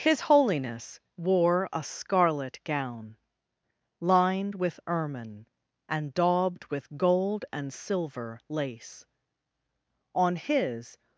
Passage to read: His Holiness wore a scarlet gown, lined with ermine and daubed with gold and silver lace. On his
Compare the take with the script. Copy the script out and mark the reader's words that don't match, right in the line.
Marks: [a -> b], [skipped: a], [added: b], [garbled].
His Holiness wore a scarlet gown, lined with ermine and daubed with gold and silver lace. On his